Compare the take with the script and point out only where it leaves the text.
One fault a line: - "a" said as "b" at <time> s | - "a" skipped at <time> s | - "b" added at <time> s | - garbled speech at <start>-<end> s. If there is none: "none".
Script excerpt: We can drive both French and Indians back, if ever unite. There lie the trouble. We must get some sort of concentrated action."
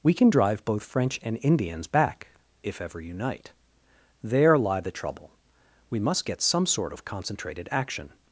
none